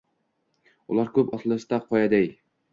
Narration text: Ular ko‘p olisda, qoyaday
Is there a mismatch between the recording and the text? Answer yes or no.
no